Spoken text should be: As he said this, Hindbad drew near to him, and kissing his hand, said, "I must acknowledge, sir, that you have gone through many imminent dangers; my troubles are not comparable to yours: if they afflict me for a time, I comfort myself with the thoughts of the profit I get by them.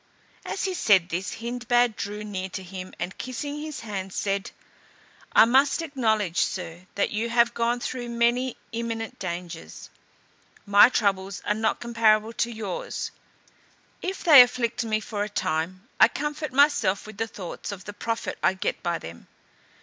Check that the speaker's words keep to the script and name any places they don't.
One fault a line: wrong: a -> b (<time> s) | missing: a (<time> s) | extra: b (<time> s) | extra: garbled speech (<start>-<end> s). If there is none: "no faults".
no faults